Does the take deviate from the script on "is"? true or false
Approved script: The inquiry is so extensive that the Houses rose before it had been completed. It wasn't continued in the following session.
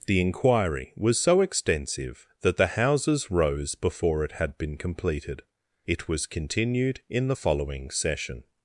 true